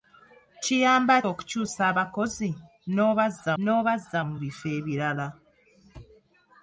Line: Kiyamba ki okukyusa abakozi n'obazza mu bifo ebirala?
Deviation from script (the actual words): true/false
true